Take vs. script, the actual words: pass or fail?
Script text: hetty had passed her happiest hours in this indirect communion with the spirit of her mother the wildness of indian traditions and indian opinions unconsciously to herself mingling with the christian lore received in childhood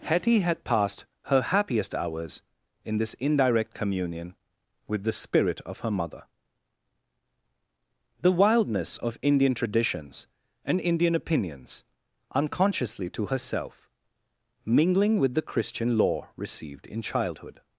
pass